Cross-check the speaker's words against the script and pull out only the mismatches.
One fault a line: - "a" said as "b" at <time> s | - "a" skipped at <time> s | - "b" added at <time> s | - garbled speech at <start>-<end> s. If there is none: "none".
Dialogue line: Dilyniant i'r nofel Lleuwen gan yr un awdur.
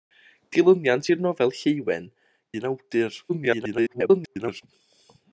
- "gan yr" skipped at 2.1 s
- garbled speech at 3.3-4.6 s